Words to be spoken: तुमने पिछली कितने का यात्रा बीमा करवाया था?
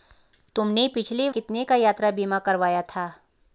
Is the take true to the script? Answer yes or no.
yes